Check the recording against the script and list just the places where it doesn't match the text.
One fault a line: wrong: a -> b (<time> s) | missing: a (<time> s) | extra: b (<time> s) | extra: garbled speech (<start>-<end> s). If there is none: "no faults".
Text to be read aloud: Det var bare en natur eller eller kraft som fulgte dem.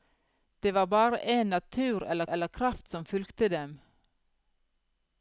no faults